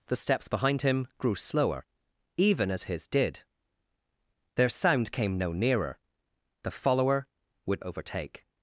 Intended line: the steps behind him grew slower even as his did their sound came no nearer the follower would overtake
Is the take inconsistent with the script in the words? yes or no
no